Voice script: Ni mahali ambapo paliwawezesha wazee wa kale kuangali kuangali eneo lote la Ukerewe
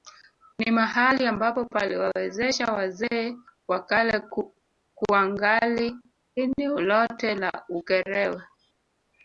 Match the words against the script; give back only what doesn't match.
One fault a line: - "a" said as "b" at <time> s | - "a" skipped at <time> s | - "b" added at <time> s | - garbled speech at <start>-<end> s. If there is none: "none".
- "kuangali" skipped at 6.0 s